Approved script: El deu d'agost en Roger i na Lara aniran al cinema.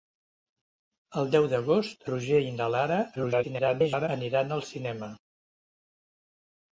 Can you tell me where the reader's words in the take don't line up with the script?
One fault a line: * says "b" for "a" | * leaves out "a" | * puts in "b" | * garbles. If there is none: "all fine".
* leaves out "en"
* garbles